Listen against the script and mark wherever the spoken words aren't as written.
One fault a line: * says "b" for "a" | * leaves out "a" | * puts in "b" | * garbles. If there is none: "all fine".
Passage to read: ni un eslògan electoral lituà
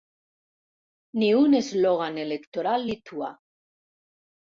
all fine